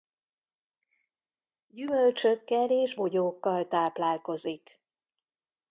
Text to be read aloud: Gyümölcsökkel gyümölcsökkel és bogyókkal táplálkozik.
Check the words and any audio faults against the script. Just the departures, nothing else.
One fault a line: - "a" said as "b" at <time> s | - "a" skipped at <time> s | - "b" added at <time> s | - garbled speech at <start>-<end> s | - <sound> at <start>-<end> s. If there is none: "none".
- "gyümölcsökkel" skipped at 2.7 s